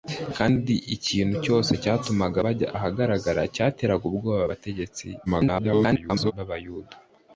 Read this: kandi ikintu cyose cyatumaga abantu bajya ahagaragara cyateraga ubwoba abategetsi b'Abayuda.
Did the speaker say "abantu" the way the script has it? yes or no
no